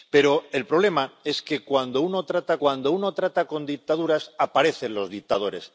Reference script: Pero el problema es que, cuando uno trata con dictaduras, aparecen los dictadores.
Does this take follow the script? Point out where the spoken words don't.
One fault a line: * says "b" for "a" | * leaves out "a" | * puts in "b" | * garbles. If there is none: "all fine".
* puts in "cuando uno trata"